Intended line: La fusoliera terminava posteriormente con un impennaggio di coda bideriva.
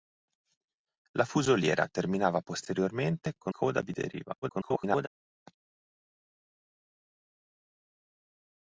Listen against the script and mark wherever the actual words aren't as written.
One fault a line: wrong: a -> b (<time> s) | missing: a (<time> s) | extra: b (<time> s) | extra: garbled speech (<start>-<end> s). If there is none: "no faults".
missing: un impennaggio di (3.5 s)
extra: garbled speech (4.4-5.1 s)